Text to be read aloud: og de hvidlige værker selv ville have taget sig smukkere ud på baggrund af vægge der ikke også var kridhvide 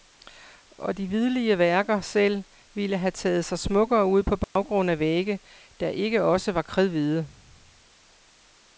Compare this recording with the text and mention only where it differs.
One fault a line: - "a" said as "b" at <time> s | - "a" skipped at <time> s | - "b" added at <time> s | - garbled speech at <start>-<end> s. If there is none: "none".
none